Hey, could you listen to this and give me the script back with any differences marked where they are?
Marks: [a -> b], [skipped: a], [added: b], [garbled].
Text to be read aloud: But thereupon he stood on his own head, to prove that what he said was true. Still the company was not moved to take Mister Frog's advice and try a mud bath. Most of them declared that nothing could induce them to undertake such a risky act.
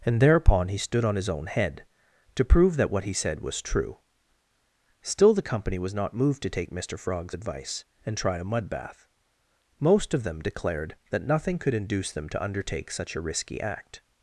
[But -> And] thereupon he stood on his own head, to prove that what he said was true. Still the company was not moved to take Mister Frog's advice and try a mud bath. Most of them declared that nothing could induce them to undertake such a risky act.